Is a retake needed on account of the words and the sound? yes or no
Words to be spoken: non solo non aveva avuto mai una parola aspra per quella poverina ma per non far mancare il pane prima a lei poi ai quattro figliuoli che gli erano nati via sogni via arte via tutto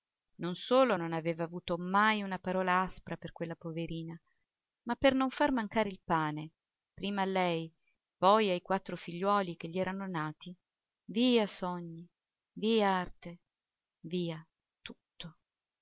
no